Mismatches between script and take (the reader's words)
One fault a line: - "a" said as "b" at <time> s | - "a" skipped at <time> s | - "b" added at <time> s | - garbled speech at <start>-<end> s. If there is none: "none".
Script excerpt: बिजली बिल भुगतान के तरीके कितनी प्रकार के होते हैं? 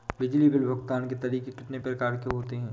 none